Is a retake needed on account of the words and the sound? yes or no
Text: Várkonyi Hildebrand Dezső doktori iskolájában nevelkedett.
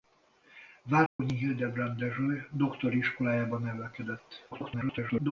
yes